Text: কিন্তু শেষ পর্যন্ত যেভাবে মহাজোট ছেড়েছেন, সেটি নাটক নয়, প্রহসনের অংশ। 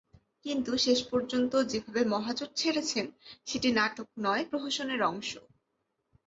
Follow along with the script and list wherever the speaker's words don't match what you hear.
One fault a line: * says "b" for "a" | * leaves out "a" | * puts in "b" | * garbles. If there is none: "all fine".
all fine